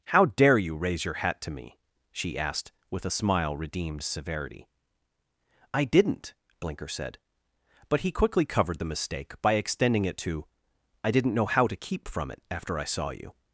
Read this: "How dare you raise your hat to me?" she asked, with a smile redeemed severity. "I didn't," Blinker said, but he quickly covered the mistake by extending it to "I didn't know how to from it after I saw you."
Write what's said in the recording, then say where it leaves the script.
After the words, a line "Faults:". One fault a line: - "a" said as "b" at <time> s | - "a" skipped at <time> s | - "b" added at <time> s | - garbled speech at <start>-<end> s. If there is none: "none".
"How dare you raise your hat to me?" she asked, with a smile redeemed severity. "I didn't," Blinker said, but he quickly covered the mistake by extending it to "I didn't know how to keep from it after I saw you."
Faults:
- "keep" added at 11.8 s